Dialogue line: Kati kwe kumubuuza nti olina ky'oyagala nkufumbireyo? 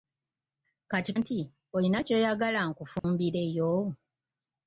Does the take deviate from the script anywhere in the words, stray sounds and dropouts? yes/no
yes